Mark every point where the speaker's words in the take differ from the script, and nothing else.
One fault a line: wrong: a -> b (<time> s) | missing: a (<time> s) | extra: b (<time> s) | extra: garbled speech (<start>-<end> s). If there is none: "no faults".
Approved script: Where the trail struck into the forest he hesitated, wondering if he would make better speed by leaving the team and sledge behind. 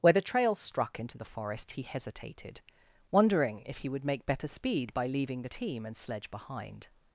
no faults